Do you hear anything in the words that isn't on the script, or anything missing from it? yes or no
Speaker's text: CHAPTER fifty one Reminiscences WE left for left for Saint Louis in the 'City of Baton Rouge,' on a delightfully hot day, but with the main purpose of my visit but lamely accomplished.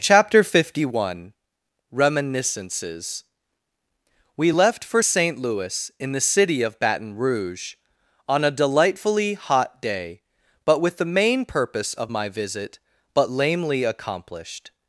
yes